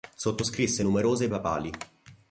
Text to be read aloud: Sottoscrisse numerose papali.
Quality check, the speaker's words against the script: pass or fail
pass